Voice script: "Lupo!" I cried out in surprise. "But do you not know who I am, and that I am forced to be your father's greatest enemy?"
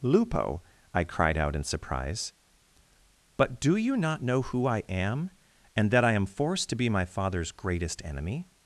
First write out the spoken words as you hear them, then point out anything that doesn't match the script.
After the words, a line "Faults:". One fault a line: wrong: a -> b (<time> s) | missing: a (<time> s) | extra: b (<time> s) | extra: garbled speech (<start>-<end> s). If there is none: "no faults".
"Lupo!" I cried out in surprise. "But do you not know who I am, and that I am forced to be my father's greatest enemy?"
Faults:
wrong: your -> my (6.9 s)